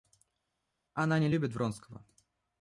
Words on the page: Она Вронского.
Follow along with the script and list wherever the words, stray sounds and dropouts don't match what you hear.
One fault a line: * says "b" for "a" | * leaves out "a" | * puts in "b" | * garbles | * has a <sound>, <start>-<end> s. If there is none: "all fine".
* puts in "не любит"